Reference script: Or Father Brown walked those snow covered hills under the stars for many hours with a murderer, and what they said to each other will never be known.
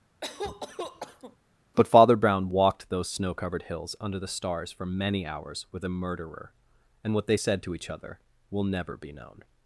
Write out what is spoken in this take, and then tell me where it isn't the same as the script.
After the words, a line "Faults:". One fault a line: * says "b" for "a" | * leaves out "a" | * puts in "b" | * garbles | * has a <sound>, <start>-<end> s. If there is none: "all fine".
But Father Brown walked those snow covered hills under the stars for many hours with a murderer, and what they said to each other will never be known.
Faults:
* has a cough, 0.2-1.4 s
* says "But" for "Or"